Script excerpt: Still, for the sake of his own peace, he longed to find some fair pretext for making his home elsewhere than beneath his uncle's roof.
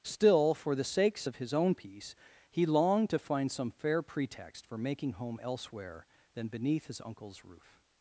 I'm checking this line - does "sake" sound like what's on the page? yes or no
no